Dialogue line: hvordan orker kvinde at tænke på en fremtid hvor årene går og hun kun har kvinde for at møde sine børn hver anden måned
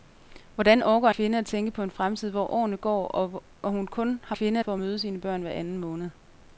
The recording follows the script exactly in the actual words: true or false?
true